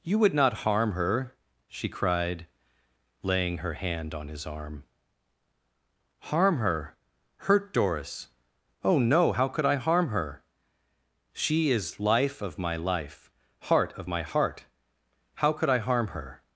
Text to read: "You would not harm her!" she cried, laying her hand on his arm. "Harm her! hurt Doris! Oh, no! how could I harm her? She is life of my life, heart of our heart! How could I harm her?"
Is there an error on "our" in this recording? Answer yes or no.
yes